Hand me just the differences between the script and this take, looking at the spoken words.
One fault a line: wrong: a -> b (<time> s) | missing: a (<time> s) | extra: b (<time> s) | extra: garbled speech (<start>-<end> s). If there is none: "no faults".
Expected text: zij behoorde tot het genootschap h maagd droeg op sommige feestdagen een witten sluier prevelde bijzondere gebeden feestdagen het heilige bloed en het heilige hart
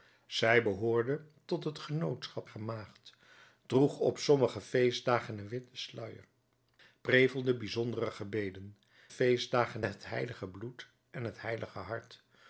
no faults